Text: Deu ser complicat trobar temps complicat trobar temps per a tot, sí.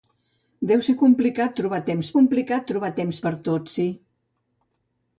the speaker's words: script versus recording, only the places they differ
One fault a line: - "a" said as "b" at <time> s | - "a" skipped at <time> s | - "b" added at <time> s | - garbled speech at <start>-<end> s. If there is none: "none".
none